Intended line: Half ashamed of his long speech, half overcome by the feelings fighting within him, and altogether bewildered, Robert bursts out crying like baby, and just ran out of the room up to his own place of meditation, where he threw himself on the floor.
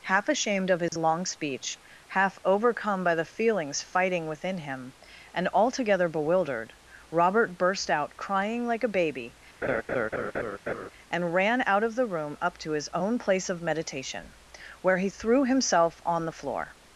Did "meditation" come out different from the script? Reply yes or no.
no